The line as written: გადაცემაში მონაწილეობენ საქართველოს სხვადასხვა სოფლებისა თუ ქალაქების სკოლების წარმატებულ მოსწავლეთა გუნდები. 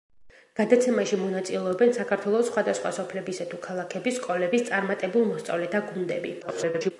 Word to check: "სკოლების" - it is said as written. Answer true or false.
true